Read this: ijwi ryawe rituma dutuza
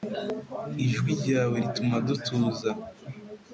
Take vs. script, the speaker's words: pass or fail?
pass